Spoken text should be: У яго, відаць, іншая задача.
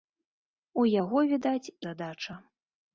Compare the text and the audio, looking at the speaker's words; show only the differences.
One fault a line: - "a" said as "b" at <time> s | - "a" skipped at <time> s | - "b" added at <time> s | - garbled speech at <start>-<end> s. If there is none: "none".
- "іншая" skipped at 1.7 s